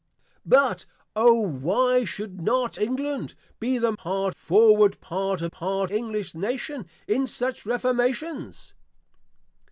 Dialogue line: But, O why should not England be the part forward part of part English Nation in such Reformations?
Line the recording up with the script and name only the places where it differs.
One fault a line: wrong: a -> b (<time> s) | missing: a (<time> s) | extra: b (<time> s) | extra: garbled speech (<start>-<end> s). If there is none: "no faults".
no faults